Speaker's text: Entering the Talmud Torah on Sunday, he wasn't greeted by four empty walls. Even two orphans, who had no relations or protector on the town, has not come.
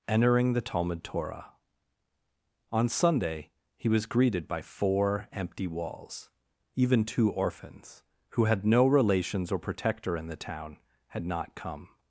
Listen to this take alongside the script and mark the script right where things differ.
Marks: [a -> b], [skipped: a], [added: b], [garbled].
Entering the Talmud Torah on Sunday, he [wasn't -> was] greeted by four empty walls. Even two orphans, who had no relations or protector [on -> in] the town, [has -> had] not come.